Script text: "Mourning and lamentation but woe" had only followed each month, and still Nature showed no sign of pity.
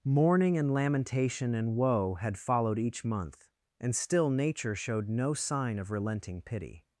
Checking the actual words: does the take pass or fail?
fail